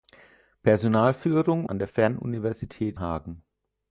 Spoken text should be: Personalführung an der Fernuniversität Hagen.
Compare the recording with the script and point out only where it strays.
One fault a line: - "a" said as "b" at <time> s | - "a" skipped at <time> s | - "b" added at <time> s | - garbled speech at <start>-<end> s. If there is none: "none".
none